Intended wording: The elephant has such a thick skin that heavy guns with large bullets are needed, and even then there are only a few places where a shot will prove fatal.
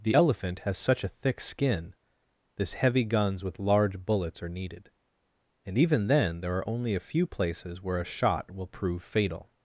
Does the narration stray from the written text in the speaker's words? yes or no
yes